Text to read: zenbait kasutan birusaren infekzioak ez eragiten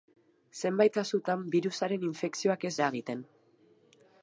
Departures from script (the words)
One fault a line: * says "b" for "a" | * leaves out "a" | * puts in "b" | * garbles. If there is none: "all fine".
all fine